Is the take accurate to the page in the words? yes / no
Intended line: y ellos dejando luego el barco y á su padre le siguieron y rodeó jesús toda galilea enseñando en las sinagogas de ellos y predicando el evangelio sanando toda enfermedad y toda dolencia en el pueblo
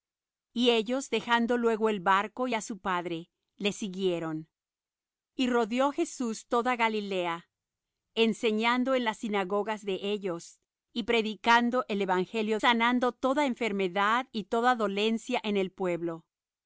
yes